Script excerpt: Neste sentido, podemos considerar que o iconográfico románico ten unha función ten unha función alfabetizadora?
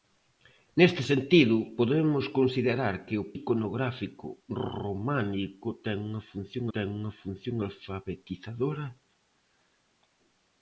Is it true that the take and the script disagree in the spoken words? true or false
false